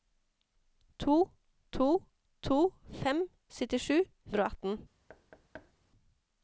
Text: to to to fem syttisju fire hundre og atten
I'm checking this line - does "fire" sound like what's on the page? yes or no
no